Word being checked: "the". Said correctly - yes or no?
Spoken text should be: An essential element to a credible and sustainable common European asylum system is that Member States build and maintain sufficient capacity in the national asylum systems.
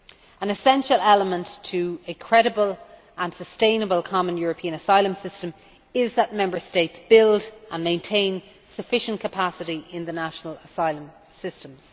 yes